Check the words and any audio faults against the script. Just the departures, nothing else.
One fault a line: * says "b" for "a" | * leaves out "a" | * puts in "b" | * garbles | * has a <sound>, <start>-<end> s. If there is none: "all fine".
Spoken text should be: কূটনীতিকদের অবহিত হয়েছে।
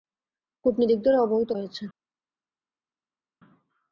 all fine